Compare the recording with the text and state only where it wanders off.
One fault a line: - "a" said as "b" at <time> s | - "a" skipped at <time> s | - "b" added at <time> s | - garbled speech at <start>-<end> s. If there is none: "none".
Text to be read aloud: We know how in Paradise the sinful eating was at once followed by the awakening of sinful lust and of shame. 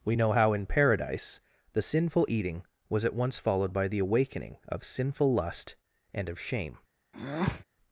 none